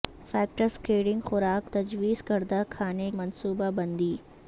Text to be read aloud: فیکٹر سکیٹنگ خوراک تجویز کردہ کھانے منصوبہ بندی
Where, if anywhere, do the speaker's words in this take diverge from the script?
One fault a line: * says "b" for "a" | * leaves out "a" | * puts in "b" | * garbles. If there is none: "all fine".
all fine